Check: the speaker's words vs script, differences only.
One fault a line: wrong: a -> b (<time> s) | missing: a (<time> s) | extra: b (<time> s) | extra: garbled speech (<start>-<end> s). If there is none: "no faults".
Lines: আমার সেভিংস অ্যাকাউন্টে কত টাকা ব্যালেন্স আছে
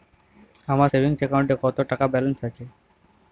no faults